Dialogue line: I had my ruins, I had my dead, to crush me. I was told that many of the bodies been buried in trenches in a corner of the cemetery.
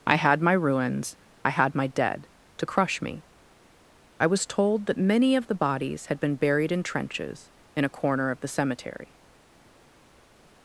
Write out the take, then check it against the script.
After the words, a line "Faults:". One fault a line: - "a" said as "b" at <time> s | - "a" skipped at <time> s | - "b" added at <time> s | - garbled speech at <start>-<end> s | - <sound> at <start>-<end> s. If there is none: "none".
I had my ruins, I had my dead, to crush me. I was told that many of the bodies had been buried in trenches in a corner of the cemetery.
Faults:
- "had" added at 6.1 s